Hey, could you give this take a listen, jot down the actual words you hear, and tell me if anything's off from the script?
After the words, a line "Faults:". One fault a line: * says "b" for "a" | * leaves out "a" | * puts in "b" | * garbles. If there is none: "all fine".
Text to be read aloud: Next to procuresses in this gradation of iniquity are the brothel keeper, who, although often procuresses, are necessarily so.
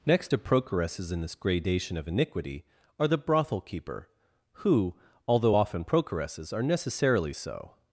Next to procuresses in this gradation of iniquity are the brothel keeper, who, although often procuresses, are necessarily so.
Faults:
all fine